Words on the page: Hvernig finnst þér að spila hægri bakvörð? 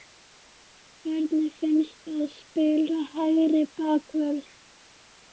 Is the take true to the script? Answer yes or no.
no